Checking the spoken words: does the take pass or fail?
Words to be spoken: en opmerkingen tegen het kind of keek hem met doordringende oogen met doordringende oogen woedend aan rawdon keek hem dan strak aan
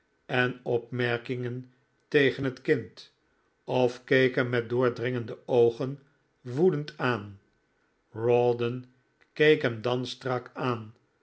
fail